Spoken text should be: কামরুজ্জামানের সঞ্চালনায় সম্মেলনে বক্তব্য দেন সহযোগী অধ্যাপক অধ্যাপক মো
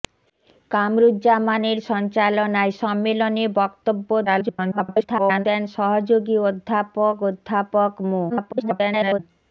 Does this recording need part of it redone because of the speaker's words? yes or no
yes